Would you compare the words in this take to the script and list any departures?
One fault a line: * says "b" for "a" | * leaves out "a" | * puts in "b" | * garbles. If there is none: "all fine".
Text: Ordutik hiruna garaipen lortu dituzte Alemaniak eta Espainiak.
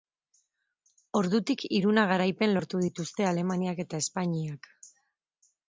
all fine